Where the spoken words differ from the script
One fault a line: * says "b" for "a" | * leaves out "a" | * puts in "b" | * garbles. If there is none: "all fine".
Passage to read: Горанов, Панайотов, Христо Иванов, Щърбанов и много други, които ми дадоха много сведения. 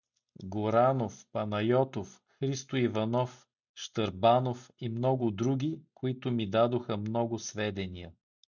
all fine